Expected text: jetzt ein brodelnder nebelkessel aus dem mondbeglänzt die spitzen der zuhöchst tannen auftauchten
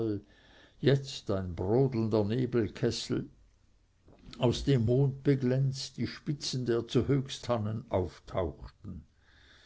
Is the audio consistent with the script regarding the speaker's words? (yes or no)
yes